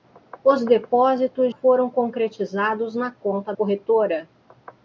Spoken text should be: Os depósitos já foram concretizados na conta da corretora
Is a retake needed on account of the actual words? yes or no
yes